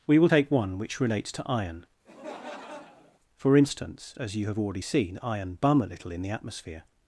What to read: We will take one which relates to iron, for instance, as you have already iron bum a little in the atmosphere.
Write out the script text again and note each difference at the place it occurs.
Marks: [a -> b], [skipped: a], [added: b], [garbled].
We will take one which relates to iron, for instance, as you have already [added: seen] iron bum a little in the atmosphere.